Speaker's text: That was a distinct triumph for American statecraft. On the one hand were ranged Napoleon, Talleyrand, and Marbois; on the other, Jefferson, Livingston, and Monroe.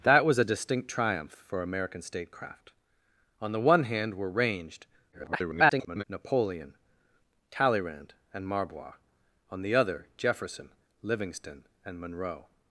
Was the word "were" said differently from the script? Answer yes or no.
no